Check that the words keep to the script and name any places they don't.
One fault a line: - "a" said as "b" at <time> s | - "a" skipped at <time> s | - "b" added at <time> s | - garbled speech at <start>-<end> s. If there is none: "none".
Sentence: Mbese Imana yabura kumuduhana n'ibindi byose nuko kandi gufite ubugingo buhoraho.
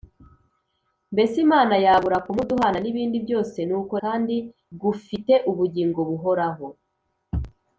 none